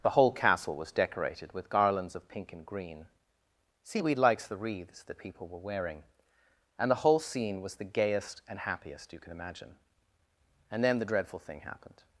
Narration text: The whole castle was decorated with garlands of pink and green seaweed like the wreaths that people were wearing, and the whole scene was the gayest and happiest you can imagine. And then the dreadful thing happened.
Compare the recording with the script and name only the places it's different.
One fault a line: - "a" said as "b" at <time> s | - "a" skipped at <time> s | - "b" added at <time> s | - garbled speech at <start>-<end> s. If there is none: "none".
- "like" said as "likes" at 4.2 s